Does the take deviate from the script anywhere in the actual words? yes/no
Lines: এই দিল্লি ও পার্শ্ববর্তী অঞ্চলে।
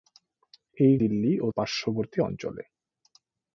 no